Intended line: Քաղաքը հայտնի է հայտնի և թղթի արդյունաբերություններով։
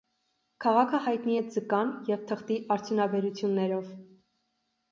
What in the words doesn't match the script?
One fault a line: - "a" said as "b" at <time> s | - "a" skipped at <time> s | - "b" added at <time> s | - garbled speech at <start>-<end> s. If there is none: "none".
- "հայտնի" said as "ձկան" at 1.5 s